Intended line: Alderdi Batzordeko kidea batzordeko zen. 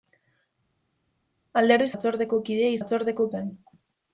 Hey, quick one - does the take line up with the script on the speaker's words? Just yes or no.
yes